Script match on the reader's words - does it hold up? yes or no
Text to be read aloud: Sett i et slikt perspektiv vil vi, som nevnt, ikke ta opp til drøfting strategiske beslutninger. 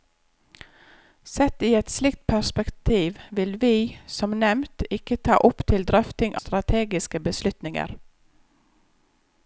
yes